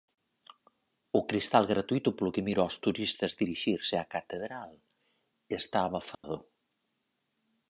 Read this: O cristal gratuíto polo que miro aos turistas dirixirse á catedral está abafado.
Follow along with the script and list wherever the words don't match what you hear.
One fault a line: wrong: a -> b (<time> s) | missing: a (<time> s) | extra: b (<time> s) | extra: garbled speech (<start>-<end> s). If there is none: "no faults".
no faults